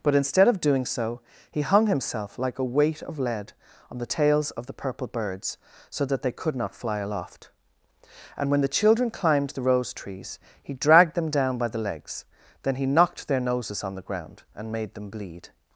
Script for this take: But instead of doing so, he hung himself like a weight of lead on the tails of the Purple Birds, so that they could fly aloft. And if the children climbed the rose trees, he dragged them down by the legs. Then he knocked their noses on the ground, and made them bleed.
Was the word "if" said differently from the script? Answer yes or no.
yes